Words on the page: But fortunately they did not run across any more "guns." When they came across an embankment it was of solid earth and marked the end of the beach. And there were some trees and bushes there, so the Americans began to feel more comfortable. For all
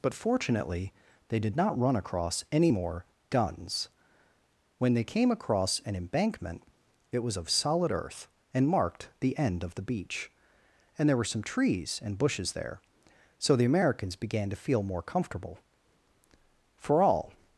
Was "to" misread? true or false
false